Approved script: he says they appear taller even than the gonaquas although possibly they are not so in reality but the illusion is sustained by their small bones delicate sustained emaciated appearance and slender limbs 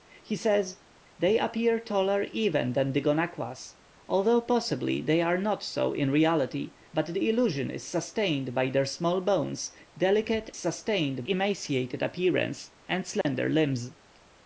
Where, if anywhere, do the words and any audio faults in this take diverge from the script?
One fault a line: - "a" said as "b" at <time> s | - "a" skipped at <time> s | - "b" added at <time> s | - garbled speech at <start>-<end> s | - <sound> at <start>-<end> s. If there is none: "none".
- dropout at 13.2-13.3 s